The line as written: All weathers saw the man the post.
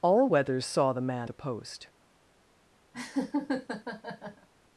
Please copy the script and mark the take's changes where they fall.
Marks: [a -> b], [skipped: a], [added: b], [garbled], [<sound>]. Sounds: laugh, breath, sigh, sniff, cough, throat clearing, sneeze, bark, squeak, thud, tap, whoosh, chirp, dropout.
All weathers saw the man the post. [laugh]